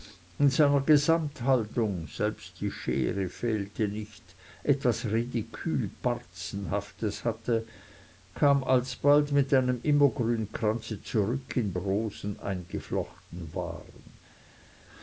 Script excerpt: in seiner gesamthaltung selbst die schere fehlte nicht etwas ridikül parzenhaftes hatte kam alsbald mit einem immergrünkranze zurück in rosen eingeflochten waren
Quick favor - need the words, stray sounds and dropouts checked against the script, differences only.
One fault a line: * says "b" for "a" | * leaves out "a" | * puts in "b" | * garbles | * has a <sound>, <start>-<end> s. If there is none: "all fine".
all fine